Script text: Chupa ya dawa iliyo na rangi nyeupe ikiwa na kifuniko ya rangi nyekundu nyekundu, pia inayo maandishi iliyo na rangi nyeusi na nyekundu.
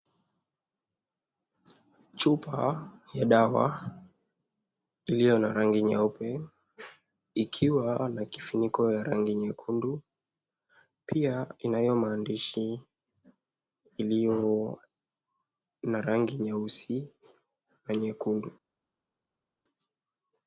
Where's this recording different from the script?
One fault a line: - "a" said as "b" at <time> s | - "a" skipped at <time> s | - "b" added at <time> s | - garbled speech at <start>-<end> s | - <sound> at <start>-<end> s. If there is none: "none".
- "nyekundu" skipped at 10.0 s